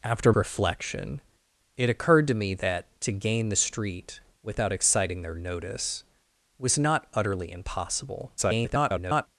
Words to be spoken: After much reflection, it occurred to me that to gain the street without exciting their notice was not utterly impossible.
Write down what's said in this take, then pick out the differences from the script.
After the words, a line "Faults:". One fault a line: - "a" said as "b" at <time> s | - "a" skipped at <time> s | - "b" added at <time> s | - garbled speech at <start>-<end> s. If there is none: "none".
After reflection, it occurred to me that to gain the street without exciting their notice was not utterly impossible. [garbled]
Faults:
- "much" skipped at 0.3 s
- garbled speech at 8.4-9.3 s